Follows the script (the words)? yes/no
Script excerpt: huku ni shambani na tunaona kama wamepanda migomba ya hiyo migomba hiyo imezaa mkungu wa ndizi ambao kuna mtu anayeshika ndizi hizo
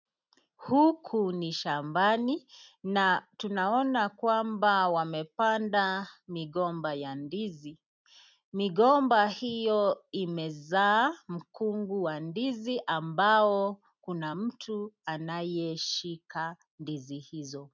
no